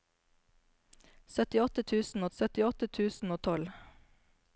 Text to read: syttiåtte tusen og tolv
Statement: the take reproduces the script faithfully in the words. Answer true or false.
false